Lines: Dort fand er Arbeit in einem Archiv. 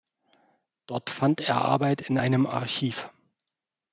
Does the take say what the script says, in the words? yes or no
yes